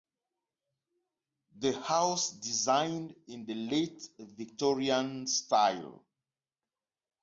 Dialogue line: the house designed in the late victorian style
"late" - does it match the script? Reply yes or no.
yes